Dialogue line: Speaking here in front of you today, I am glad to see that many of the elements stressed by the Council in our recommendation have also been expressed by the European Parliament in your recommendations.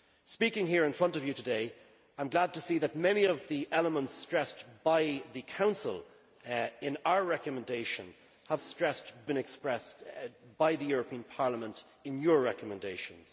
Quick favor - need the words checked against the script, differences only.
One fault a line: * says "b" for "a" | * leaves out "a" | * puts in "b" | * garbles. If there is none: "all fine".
* says "stressed" for "also"